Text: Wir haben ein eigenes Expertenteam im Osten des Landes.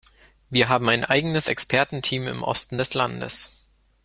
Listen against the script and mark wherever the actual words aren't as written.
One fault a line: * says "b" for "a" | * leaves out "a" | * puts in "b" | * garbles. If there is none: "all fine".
all fine